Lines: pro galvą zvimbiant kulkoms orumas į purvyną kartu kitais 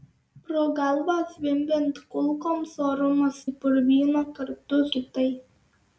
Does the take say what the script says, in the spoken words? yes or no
yes